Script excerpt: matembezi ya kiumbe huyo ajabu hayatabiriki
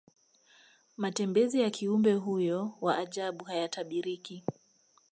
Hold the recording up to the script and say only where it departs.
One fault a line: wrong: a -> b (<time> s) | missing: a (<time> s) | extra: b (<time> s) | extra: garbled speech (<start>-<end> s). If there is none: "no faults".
extra: wa (2.8 s)